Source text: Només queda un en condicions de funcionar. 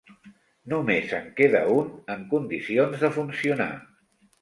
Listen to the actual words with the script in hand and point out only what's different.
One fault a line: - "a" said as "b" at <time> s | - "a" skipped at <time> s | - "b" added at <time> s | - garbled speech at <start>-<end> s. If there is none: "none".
- "en" added at 1.2 s